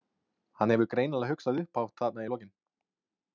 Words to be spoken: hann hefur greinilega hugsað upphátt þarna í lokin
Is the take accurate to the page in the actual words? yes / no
yes